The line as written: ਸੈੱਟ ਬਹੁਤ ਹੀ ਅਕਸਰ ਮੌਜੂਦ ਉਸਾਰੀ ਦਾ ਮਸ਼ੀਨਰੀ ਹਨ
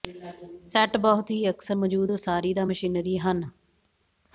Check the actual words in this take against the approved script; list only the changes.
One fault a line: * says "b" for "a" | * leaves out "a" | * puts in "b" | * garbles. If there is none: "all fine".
all fine